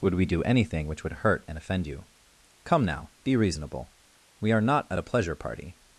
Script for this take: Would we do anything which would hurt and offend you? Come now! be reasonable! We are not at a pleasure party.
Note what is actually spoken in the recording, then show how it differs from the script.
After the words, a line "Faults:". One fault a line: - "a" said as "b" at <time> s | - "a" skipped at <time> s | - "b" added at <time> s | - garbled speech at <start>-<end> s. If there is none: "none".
Would we do anything which would hurt and offend you? Come now! be reasonable! We are not at a pleasure party.
Faults:
none